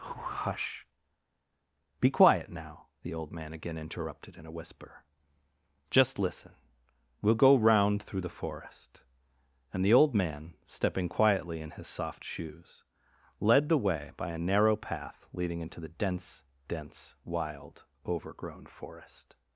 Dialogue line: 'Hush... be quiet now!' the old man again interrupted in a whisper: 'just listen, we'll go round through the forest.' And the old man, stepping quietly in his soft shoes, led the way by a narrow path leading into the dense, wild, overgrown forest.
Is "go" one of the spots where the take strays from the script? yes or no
no